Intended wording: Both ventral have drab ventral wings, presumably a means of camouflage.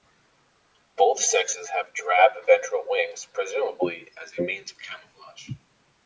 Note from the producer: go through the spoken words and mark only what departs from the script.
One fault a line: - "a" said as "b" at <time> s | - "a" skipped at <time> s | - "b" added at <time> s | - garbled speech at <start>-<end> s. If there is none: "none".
- "ventral" said as "sexes" at 1.2 s
- "as" added at 4.2 s